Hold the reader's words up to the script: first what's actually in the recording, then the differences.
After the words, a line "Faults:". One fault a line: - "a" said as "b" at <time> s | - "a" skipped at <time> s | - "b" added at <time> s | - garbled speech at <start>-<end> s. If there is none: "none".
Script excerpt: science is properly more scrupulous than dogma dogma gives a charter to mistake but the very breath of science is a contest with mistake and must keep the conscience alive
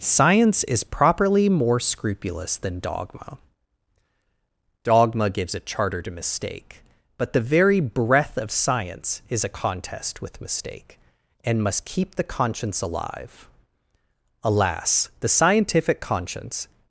science is properly more scrupulous than dogma dogma gives a charter to mistake but the very breath of science is a contest with mistake and must keep the conscience alive alas the scientific conscience
Faults:
- "alas the scientific conscience" added at 14.4 s